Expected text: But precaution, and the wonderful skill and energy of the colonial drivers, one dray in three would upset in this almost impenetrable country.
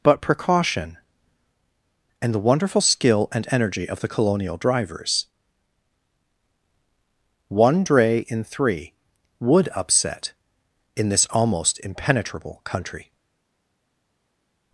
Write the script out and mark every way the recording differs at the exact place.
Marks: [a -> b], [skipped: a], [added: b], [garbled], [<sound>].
But precaution, and the wonderful skill and energy of the colonial drivers, one dray in three would upset in this almost impenetrable country.